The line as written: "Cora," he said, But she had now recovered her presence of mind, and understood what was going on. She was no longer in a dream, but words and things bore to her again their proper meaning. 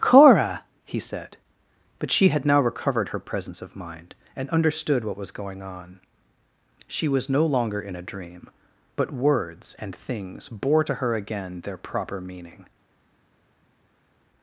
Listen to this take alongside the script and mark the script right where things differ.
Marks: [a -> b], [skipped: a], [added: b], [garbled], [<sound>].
"Cora," he said, But she had now recovered her presence of mind, and understood what was going on. She was no longer in a dream, but words and things bore to her again their proper meaning.